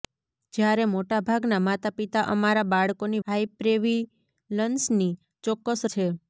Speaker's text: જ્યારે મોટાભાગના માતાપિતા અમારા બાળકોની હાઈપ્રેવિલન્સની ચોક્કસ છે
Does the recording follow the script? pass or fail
pass